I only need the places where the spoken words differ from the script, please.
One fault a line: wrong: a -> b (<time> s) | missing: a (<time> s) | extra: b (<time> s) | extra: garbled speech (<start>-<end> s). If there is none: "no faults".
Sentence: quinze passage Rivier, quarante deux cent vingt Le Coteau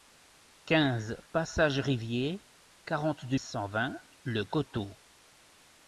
no faults